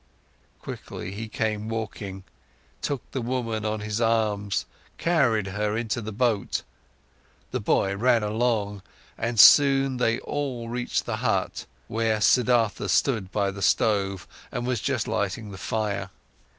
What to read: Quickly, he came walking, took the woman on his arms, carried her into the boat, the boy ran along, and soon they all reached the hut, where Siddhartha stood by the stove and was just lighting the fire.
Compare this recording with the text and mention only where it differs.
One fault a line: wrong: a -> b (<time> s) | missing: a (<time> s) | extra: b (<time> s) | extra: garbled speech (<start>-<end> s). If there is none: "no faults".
no faults